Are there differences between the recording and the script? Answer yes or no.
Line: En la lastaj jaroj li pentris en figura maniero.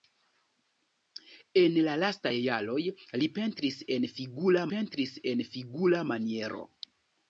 yes